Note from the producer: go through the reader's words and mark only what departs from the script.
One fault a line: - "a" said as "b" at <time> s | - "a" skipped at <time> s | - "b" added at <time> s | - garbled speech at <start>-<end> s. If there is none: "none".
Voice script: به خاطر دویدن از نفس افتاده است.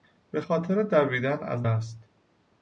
- "نفس افتاده" skipped at 1.6 s